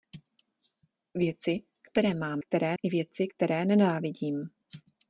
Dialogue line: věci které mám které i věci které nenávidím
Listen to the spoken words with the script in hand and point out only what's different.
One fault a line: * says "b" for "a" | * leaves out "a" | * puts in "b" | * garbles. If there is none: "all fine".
all fine